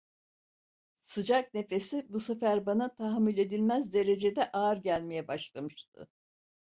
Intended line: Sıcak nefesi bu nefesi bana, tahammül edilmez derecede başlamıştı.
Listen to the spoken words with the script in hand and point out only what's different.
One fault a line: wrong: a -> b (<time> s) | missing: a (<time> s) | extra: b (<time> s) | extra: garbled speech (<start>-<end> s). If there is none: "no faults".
wrong: nefesi -> sefer (2.2 s)
extra: ağır gelmeye (4.5 s)